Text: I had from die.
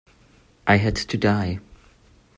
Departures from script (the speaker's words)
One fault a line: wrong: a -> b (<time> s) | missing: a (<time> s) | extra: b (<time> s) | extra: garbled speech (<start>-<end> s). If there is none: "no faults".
wrong: from -> to (0.9 s)